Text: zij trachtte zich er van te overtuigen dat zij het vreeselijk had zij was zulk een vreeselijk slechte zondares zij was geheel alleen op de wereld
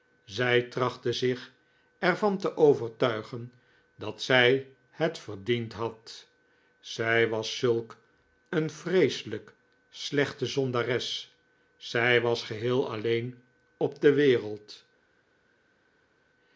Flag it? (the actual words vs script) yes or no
yes